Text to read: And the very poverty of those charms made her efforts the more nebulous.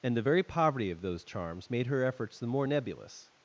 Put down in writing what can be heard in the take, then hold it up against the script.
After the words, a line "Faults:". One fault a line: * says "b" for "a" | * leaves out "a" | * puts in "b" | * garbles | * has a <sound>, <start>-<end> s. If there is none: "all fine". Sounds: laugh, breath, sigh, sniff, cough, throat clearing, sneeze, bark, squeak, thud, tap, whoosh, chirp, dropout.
And the very poverty of those charms made her efforts the more nebulous.
Faults:
all fine